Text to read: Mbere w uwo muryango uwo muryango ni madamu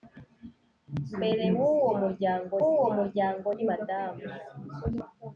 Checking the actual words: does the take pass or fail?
pass